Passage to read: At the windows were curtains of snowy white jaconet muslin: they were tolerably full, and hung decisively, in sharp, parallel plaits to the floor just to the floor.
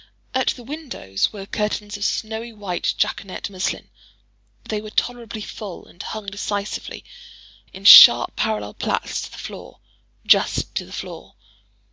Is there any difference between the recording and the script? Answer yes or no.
no